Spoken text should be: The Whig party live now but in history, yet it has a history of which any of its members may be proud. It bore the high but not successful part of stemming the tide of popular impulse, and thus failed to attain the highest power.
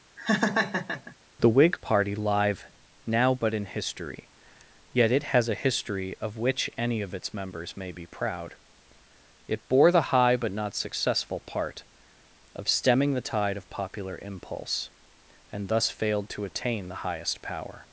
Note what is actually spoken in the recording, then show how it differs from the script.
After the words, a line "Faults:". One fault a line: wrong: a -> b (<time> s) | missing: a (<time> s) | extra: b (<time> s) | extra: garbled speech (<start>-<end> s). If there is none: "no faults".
The Whig party live now but in history, yet it has a history of which any of its members may be proud. It bore the high but not successful part of stemming the tide of popular impulse, and thus failed to attain the highest power.
Faults:
no faults